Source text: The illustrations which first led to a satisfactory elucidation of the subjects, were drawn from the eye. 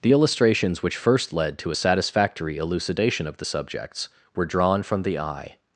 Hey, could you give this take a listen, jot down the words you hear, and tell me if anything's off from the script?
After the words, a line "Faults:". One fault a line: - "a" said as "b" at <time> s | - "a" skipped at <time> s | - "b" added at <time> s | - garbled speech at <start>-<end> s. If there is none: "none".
The illustrations which first led to a satisfactory elucidation of the subjects, were drawn from the eye.
Faults:
none